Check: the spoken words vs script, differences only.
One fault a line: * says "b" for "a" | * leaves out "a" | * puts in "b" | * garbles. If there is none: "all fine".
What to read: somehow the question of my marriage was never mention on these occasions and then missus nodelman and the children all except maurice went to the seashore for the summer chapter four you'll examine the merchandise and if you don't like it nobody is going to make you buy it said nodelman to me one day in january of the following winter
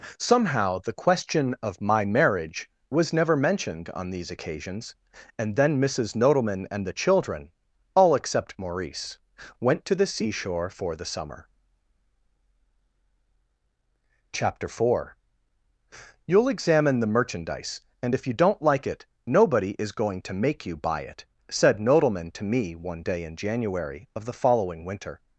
* says "mentioned" for "mention"